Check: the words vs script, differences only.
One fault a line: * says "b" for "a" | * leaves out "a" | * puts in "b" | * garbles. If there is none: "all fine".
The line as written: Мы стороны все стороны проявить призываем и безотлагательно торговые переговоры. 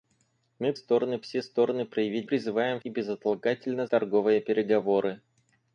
all fine